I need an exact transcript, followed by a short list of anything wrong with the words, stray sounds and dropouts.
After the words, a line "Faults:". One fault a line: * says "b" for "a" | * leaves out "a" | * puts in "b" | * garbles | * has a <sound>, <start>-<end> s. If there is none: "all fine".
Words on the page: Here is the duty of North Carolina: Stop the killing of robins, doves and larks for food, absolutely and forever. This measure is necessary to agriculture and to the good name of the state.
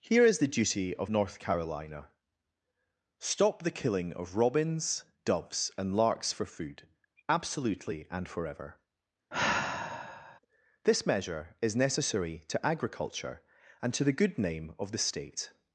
Here is the duty of North Carolina: Stop the killing of robins, doves and larks for food, absolutely and forever. This measure is necessary to agriculture and to the good name of the state.
Faults:
* has a sigh, 9.3-10.4 s